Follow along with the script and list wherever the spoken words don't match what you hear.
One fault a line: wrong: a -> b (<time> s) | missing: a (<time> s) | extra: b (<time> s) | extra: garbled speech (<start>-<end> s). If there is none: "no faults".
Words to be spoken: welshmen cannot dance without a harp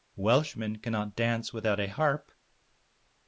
no faults